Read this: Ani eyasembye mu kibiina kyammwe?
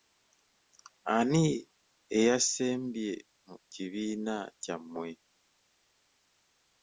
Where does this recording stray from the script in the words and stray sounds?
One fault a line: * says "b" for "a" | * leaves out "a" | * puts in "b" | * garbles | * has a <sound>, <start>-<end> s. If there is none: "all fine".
all fine